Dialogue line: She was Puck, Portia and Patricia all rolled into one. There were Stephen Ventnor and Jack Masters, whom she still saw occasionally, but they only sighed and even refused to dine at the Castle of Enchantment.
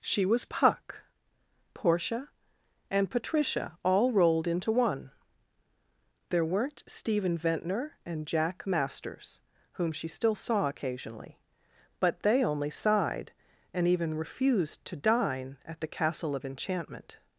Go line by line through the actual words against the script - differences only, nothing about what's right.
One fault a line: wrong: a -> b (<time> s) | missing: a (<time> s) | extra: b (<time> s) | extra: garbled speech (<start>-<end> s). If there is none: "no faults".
wrong: were -> weren't (6.4 s)